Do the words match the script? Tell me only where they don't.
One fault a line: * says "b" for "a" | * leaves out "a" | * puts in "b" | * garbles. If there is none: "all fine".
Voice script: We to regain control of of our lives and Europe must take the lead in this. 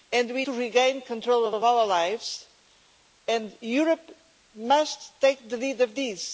all fine